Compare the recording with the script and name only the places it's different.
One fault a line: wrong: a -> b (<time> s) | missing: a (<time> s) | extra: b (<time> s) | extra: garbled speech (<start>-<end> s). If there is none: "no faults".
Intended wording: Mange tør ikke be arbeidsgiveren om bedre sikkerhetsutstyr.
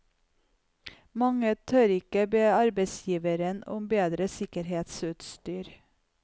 no faults